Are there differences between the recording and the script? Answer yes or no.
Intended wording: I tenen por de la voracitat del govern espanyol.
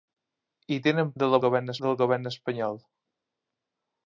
yes